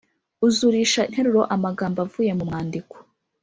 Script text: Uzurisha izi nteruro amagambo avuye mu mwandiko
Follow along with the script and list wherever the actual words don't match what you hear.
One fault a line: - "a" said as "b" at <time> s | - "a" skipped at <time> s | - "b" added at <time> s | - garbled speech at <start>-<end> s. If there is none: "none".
- "izi" skipped at 1.0 s